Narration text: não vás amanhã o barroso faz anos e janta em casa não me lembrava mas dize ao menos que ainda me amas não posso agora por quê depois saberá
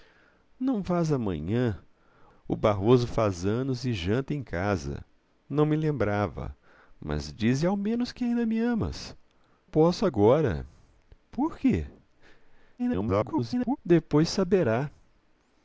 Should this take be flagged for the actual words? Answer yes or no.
yes